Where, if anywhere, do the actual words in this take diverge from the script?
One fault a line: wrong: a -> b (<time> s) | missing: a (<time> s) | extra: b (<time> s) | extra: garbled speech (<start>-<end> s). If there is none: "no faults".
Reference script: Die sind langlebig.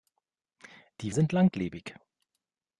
no faults